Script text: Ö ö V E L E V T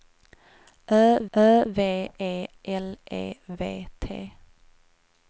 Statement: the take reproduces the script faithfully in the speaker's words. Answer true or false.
true